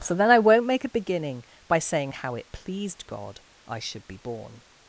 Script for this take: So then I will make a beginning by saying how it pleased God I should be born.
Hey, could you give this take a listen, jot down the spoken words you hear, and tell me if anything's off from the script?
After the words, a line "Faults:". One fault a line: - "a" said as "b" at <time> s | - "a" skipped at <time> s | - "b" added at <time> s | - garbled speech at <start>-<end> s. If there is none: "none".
So then I won't make a beginning by saying how it pleased God I should be born.
Faults:
- "will" said as "won't" at 0.4 s